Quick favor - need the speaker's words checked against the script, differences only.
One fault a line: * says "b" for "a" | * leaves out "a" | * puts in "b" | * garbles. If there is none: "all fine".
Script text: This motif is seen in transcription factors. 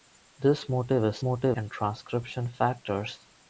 * says "motif" for "seen"